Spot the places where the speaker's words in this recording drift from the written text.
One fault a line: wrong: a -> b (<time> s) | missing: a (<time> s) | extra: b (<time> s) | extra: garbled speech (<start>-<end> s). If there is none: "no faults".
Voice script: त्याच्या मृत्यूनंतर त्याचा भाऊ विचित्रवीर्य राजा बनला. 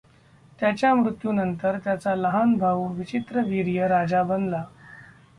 extra: लहान (2.1 s)